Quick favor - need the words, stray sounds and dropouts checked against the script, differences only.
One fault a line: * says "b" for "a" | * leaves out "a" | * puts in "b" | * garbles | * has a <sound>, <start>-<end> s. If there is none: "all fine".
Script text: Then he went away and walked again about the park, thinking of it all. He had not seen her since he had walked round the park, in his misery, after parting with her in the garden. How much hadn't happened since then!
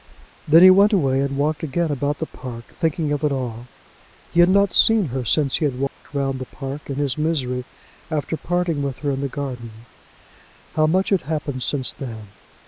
* has a dropout, 5.9-6.0 s
* says "had" for "hadn't"